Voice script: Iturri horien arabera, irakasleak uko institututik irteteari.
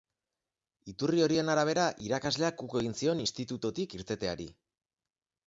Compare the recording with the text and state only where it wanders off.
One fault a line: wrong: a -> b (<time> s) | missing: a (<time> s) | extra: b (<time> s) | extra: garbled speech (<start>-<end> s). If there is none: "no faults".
extra: egin zion (2.8 s)